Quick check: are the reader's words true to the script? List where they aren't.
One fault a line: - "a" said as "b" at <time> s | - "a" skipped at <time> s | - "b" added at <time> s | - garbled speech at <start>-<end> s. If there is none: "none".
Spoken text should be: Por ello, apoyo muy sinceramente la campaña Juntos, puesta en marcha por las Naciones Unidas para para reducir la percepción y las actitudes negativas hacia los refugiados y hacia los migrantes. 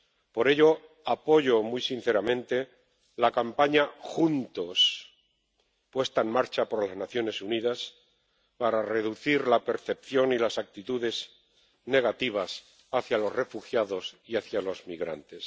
- "para" skipped at 8.8 s